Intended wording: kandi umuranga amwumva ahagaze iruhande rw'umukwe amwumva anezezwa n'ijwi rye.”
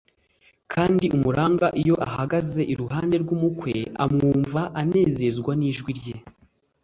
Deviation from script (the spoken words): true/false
true